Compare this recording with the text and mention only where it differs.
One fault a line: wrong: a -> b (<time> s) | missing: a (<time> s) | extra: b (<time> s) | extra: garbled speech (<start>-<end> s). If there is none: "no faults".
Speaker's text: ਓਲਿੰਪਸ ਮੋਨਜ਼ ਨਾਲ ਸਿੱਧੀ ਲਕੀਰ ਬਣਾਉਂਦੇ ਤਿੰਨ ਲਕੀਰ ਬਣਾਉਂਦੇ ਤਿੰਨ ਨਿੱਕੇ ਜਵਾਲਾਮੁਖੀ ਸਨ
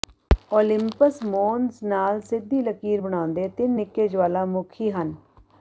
missing: ਲਕੀਰ ਬਣਾਉਂਦੇ ਤਿੰਨ (3.8 s)
wrong: ਸਨ -> ਹਨ (4.9 s)